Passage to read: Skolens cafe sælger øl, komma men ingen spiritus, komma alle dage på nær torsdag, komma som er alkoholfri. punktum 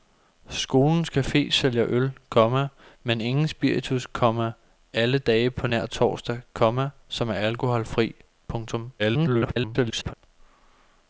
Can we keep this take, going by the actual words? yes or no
no